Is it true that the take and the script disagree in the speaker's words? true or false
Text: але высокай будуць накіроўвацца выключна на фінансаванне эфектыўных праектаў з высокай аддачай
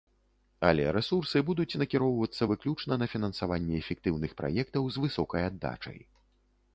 true